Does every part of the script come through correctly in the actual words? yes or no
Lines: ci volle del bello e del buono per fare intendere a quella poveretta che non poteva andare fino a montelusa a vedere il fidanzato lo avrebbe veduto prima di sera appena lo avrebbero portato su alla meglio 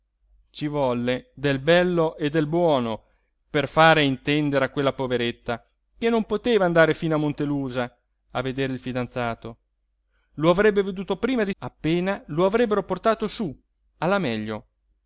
no